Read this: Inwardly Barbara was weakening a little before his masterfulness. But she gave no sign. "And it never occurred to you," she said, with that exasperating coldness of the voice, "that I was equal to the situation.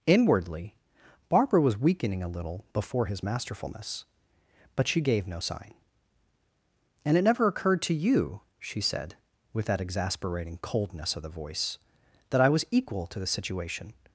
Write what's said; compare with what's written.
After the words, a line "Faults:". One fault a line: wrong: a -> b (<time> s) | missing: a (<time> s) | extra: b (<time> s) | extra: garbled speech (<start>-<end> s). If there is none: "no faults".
Inwardly Barbara was weakening a little before his masterfulness. But she gave no sign. "And it never occurred to you," she said, with that exasperating coldness of the voice, "that I was equal to the situation.
Faults:
no faults